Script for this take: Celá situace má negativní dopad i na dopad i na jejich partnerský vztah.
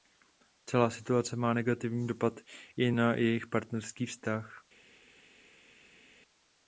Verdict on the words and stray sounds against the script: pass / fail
fail